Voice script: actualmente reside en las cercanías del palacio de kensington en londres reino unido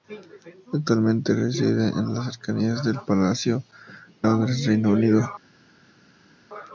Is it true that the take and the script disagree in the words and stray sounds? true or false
true